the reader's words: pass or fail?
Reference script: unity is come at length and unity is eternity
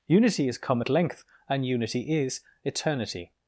pass